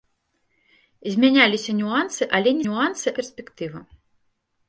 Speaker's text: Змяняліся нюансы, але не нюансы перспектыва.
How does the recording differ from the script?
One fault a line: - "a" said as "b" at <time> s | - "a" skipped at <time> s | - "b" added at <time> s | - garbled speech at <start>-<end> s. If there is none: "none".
none